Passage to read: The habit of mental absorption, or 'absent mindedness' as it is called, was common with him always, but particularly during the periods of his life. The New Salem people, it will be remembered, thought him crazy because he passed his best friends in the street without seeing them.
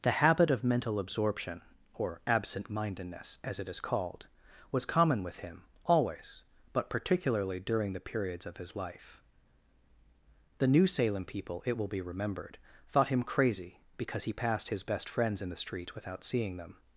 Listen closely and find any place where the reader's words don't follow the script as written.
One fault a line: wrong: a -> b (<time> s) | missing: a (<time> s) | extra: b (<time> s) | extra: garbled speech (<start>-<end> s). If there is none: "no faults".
no faults